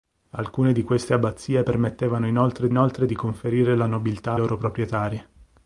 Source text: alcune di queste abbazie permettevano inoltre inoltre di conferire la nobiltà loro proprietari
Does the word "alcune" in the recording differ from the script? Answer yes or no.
no